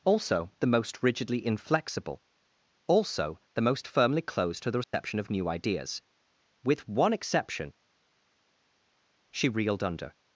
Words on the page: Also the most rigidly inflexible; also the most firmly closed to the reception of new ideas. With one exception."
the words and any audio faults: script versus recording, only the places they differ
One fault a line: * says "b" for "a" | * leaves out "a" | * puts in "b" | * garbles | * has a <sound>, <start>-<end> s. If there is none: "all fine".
* has a dropout, 4.8-4.9 s
* puts in "She reeled under"